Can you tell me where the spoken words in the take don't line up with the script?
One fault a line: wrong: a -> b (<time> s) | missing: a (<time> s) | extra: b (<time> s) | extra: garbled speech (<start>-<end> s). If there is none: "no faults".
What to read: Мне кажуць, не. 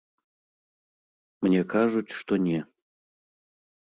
extra: што (2.2 s)